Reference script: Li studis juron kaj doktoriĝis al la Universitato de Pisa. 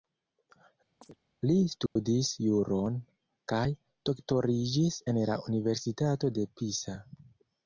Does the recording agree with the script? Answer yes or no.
no